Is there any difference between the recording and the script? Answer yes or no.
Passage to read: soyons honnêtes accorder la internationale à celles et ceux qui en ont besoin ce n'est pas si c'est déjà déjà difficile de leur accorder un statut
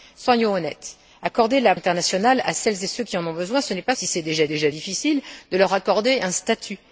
no